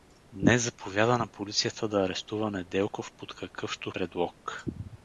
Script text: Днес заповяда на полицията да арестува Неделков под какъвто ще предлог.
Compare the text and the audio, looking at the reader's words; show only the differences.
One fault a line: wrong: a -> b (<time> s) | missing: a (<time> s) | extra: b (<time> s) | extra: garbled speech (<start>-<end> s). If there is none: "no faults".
missing: ще (3.9 s)